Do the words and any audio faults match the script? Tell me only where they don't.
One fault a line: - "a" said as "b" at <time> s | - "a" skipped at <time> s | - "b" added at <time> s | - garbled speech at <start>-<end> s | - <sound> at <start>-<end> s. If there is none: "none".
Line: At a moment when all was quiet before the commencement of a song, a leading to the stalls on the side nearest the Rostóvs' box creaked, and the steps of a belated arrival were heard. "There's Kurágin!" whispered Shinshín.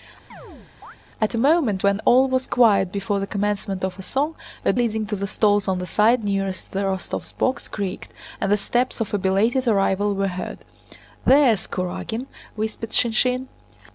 - chirp at 0.3-1.0 s